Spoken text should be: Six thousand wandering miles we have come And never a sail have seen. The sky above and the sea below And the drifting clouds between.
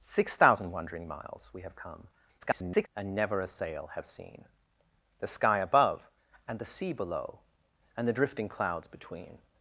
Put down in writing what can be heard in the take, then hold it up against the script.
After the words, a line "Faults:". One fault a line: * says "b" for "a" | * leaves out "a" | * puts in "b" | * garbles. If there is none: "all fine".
Six thousand wandering miles we have come [garbled] And never a sail have seen. The sky above and the sea below And the drifting clouds between.
Faults:
* garbles